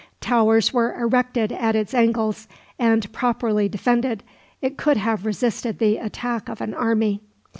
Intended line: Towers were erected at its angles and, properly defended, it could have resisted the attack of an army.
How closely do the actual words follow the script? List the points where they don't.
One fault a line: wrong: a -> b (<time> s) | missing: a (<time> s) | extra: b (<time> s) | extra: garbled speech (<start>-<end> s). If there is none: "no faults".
no faults